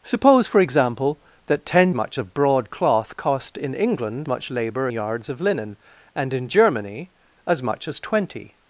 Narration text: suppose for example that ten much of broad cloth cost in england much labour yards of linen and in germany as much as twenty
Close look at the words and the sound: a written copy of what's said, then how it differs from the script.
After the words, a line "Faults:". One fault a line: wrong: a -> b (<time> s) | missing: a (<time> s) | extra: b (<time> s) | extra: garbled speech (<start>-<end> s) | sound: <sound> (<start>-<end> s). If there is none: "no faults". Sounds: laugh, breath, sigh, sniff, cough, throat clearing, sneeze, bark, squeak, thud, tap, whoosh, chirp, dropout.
suppose for example that ten much of broad cloth cost in england much labour yards of linen and in germany as much as twenty
Faults:
no faults